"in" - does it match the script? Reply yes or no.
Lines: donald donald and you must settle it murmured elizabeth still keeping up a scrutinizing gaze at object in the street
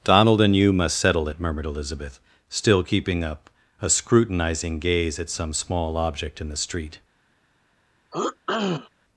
yes